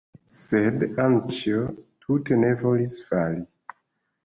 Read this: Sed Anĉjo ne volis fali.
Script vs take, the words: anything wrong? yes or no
yes